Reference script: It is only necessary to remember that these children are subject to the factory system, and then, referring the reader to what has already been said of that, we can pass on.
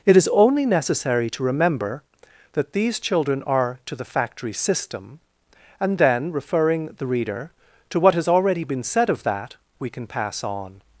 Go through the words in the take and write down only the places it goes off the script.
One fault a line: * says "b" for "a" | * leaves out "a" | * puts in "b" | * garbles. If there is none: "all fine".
* leaves out "subject"